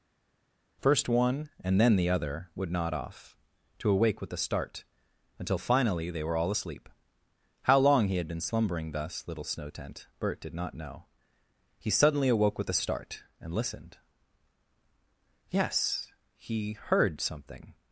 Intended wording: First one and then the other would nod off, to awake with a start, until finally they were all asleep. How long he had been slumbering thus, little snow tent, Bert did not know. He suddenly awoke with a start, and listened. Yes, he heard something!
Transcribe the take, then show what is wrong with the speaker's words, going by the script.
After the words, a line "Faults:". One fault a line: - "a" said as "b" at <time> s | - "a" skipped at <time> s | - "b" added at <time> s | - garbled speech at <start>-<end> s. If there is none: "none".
First one and then the other would nod off, to awake with a start, until finally they were all asleep. How long he had been slumbering thus, little snow tent, Bert did not know. He suddenly awoke with a start, and listened. Yes, he heard something!
Faults:
none